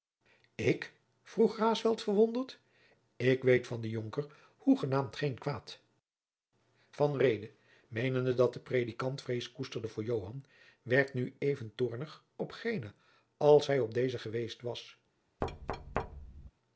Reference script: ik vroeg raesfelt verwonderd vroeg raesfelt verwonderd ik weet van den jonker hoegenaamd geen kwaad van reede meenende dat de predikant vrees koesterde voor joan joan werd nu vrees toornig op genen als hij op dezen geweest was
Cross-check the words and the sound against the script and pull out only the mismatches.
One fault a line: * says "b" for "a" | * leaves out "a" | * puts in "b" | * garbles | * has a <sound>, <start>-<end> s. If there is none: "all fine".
* leaves out "vroeg raesfelt verwonderd"
* leaves out "joan"
* says "even" for "vrees"
* has a thud, 15.4-16.5 s